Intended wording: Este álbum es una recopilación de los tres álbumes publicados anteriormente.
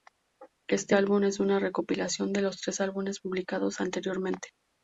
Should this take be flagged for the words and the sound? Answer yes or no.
no